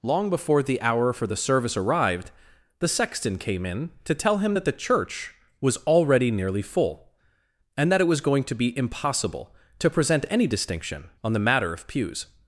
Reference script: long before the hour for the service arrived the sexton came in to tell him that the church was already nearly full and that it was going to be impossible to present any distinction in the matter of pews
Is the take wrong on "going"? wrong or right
right